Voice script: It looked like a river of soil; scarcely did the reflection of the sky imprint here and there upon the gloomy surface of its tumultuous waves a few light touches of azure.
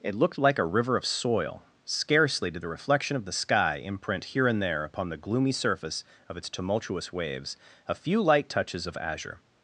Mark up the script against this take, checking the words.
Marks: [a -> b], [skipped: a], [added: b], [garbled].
It looked like a river of soil; scarcely did the reflection of the sky imprint here and there upon the gloomy surface of its tumultuous waves a few light touches of azure.